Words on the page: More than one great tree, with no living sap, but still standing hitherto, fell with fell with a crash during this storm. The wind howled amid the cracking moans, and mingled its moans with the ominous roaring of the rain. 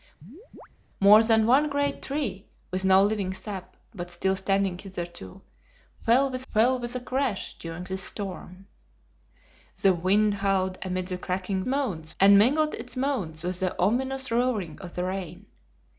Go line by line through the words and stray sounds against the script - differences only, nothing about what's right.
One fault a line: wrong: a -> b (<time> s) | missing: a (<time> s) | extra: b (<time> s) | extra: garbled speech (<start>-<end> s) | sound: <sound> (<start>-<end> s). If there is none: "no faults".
sound: chirp (0.2-0.7 s)